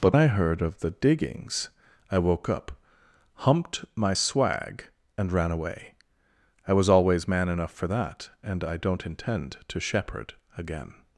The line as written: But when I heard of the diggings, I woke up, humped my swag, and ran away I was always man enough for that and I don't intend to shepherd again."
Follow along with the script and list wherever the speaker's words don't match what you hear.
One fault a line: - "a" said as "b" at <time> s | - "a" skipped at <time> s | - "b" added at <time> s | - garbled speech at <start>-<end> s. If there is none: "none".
- "when" skipped at 0.1 s